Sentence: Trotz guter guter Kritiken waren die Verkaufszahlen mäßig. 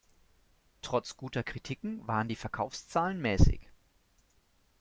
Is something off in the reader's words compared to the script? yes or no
yes